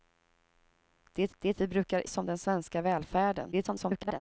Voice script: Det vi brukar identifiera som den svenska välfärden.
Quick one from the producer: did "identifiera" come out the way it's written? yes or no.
no